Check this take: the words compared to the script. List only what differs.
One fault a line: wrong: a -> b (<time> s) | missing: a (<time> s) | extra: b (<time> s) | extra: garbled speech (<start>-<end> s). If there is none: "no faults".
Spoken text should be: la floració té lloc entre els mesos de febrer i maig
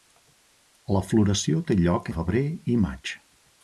missing: entre els mesos (2.1 s)